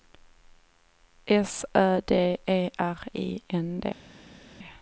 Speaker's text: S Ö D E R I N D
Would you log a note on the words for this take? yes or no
no